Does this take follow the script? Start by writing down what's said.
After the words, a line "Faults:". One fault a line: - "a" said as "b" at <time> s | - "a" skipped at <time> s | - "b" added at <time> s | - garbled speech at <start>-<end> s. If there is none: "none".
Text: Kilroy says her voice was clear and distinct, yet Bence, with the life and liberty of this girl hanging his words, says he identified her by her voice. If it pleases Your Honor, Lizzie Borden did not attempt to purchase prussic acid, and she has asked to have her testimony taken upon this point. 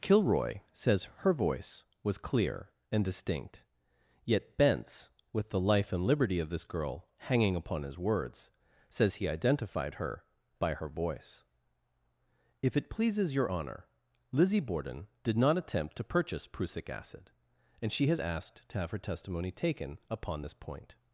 Kilroy says her voice was clear and distinct, yet Bence, with the life and liberty of this girl hanging upon his words, says he identified her by her voice. If it pleases Your Honor, Lizzie Borden did not attempt to purchase prussic acid, and she has asked to have her testimony taken upon this point.
Faults:
- "upon" added at 7.5 s